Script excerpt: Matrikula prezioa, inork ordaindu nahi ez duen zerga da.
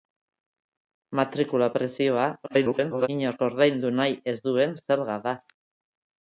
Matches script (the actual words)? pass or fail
fail